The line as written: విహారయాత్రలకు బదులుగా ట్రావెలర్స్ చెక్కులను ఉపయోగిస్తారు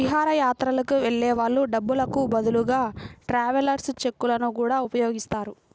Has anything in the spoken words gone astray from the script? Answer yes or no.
yes